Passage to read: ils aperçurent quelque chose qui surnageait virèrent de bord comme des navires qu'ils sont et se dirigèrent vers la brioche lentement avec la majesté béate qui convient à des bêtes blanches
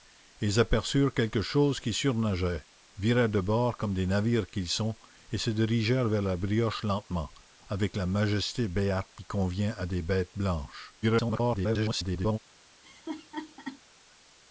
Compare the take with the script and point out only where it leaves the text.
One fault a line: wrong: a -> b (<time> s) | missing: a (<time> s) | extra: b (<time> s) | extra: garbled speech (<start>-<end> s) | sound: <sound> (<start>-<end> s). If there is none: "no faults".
extra: garbled speech (11.0-12.4 s)
sound: laugh (12.8-13.8 s)